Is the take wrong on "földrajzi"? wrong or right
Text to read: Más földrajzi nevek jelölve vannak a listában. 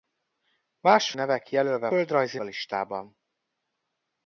wrong